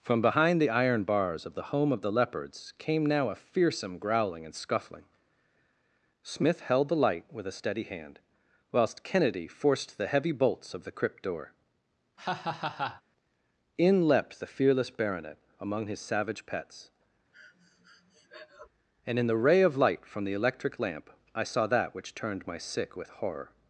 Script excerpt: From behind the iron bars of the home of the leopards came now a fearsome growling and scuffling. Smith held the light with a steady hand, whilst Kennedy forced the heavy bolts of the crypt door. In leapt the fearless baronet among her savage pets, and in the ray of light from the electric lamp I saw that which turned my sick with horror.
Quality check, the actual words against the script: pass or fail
fail